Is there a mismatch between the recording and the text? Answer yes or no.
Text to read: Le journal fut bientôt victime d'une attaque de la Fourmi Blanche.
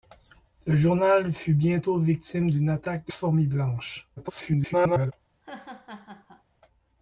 yes